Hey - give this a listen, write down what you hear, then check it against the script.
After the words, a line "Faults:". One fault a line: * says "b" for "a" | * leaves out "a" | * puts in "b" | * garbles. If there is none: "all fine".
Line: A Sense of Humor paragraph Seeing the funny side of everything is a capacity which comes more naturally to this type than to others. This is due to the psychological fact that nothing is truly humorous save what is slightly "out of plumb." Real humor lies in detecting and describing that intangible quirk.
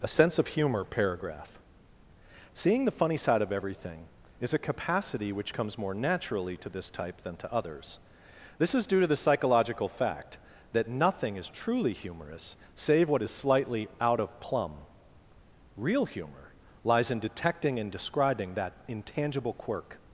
A Sense of Humor paragraph Seeing the funny side of everything is a capacity which comes more naturally to this type than to others. This is due to the psychological fact that nothing is truly humorous save what is slightly "out of plumb." Real humor lies in detecting and describing that intangible quirk.
Faults:
all fine